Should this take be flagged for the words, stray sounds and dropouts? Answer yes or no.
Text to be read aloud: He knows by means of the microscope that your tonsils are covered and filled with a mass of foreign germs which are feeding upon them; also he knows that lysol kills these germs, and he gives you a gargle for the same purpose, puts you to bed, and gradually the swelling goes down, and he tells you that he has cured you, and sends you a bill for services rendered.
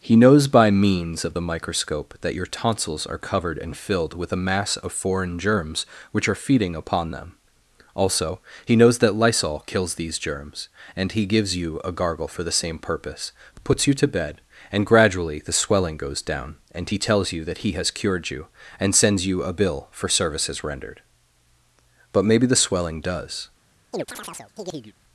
yes